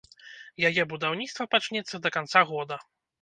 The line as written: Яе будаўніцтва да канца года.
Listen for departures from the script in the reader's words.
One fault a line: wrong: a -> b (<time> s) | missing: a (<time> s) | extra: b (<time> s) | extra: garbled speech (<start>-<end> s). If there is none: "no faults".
extra: пачнецца (1.5 s)